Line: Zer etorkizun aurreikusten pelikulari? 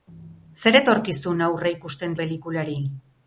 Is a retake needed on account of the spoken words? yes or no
no